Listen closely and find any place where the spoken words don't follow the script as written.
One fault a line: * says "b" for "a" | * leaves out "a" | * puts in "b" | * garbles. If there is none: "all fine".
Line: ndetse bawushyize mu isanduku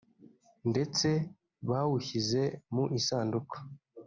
all fine